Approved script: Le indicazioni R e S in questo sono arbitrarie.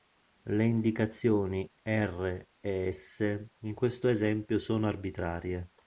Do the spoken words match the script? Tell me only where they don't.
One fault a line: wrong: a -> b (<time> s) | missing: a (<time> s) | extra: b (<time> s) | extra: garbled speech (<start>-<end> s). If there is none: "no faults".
extra: esempio (4.1 s)